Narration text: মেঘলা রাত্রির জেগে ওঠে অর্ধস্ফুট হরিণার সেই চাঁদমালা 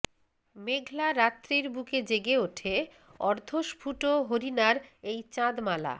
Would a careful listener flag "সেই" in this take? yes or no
yes